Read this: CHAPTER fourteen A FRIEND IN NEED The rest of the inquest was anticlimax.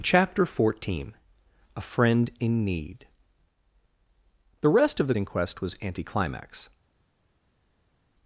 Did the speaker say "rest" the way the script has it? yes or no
yes